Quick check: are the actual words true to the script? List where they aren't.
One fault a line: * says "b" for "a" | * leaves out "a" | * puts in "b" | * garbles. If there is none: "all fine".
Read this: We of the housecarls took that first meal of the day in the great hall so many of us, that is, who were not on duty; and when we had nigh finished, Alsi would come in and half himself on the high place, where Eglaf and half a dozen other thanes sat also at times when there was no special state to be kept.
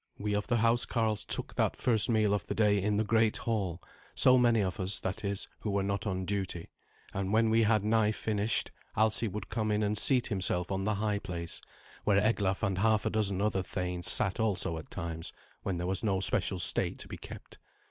* says "seat" for "half"